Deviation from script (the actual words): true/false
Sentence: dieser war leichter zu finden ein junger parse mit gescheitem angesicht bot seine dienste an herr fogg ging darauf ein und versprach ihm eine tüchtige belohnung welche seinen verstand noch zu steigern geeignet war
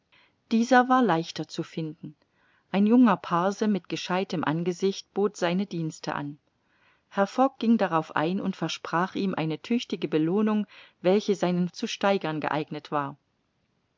true